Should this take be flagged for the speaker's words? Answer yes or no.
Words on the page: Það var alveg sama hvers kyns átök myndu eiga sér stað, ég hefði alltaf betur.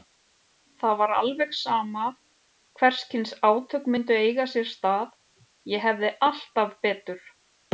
no